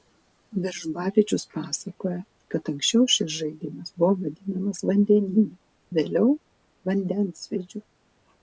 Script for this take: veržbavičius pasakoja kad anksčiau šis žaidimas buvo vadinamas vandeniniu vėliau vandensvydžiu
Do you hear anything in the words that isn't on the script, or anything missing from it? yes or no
no